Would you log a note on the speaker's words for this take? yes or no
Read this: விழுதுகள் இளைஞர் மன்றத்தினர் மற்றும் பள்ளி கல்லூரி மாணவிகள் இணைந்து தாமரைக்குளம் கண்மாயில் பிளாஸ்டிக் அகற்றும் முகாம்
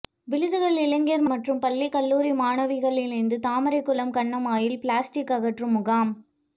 yes